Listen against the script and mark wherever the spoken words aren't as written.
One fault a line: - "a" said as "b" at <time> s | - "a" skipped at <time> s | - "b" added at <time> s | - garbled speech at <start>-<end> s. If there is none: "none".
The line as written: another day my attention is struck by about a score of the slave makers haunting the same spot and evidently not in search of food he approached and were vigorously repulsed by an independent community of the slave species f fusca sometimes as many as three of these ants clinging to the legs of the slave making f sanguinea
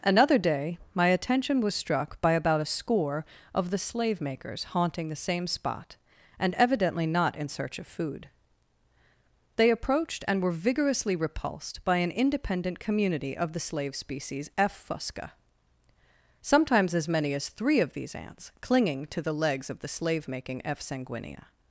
- "is" said as "was" at 1.6 s
- "he" said as "they" at 9.6 s